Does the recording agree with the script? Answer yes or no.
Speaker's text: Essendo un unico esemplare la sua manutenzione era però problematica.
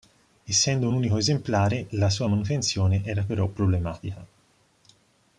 yes